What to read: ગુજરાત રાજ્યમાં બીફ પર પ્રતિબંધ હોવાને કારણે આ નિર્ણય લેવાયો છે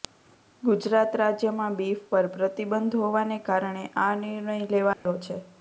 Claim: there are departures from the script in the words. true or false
false